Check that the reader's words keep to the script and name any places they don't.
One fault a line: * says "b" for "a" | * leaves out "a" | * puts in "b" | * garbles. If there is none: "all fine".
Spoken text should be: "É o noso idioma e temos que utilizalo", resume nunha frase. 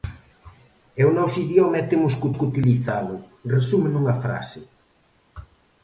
* puts in "que"